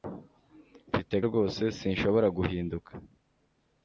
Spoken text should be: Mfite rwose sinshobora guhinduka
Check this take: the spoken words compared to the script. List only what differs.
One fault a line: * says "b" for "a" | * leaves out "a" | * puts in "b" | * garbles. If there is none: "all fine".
all fine